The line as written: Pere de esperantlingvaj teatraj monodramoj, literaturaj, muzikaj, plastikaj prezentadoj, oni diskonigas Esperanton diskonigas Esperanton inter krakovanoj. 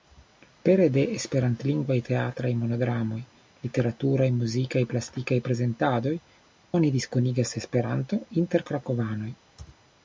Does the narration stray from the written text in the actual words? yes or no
yes